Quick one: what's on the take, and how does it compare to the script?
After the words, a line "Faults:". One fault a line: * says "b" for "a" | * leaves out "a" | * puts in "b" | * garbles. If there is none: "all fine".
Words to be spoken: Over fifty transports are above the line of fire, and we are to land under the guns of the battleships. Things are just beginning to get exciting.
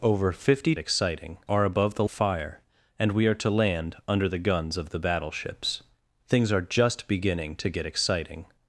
Over fifty exciting are above the of fire, and we are to land under the guns of the battleships. Things are just beginning to get exciting.
Faults:
* says "exciting" for "transports"
* leaves out "line"